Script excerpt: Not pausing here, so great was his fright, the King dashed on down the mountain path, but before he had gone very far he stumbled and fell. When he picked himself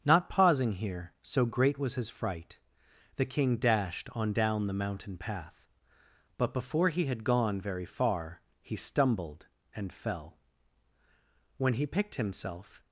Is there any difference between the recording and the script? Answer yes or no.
no